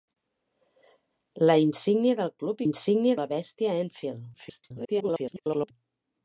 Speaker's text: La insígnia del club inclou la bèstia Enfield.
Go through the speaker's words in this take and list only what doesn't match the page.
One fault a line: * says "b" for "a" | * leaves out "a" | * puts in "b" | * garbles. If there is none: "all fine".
* says "insígnia" for "inclou"
* garbles